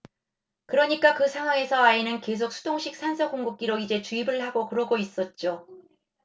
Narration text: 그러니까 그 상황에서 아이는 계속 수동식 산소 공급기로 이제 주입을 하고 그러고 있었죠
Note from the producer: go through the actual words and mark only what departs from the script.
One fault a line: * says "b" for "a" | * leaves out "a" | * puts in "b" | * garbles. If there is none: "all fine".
all fine